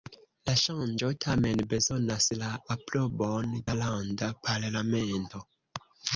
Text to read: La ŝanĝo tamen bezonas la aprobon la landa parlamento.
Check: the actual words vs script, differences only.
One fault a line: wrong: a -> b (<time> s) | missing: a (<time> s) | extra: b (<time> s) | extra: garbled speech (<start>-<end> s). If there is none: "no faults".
no faults